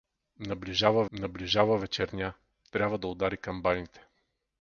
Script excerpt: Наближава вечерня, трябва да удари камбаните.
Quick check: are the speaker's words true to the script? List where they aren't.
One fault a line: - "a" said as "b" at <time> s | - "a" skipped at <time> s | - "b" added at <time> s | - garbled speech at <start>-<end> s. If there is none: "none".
- "наближава" added at 1.1 s